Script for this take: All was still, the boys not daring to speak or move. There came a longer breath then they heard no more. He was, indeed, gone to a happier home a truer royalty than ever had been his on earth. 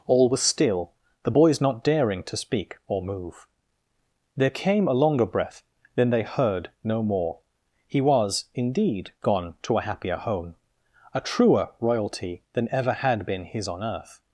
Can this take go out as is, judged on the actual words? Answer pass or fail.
pass